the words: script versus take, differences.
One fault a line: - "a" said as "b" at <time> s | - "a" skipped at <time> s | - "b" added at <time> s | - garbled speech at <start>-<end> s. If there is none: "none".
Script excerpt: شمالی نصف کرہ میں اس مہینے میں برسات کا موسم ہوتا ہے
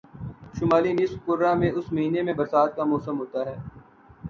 none